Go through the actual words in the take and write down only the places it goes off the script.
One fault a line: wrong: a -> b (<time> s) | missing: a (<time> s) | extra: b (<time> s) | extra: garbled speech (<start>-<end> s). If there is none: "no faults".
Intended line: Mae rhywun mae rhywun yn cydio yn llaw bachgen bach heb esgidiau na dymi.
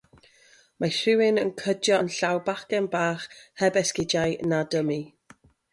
missing: mae rhywun (1.4 s)